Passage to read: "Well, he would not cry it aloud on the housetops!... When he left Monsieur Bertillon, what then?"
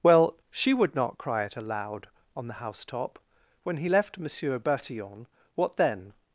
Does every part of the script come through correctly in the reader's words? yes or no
no